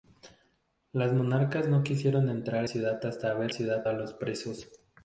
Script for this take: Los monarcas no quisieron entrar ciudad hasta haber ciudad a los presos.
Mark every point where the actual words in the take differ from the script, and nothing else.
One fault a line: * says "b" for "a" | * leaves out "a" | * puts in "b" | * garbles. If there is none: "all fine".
all fine